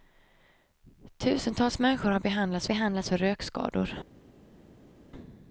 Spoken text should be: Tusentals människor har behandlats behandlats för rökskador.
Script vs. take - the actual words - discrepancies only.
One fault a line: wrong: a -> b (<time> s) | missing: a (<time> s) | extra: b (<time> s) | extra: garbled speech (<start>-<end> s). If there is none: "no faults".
no faults